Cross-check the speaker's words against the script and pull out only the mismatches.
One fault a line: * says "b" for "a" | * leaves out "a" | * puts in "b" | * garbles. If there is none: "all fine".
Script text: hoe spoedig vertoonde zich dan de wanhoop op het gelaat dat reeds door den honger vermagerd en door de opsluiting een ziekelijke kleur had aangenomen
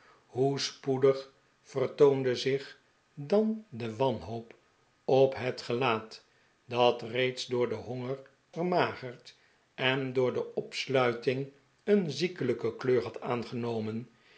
all fine